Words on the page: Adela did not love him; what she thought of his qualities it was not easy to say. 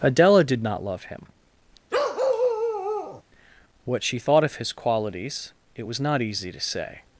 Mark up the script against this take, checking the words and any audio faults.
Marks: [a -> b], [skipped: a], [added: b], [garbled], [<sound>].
Adela did not love him; [bark] what she thought of his qualities it was not easy to say.